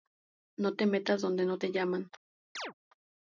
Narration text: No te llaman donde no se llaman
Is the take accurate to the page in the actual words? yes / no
no